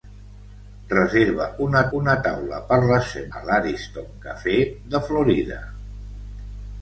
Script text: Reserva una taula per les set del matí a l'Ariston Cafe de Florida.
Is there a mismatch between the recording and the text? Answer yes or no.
yes